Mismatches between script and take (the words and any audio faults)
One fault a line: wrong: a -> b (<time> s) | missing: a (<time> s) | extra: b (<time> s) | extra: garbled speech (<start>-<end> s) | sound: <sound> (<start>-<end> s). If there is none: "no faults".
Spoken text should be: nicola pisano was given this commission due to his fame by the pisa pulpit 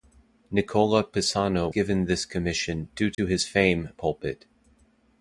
missing: was (1.7 s)
sound: dropout (3.1-3.2 s)
missing: by the pisa (3.9 s)